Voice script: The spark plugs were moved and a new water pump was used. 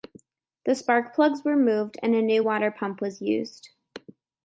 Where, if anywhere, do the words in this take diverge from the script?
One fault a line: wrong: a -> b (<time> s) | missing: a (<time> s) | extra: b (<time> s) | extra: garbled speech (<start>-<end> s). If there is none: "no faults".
no faults